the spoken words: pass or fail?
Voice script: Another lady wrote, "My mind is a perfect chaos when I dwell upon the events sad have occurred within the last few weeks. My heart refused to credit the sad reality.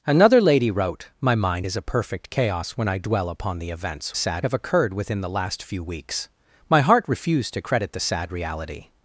pass